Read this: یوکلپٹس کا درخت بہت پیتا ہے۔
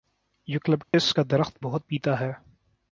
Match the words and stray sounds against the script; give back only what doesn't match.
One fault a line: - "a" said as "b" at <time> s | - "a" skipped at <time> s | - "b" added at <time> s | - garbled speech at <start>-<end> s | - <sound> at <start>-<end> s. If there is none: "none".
- dropout at 0.8-0.9 s